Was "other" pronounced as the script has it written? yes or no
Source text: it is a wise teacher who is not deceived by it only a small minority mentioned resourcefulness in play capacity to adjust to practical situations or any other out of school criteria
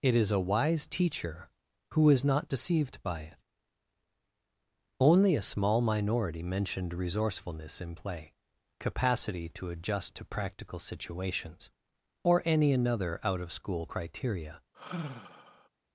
no